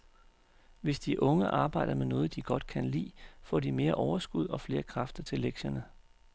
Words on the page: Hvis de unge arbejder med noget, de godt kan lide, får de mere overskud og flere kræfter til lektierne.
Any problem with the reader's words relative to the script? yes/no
no